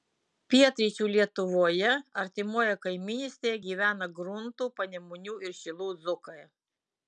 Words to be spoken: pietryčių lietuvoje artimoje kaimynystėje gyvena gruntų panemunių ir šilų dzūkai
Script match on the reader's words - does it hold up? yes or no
yes